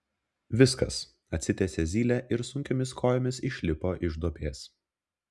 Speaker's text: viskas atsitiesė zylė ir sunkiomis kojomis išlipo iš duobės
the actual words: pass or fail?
pass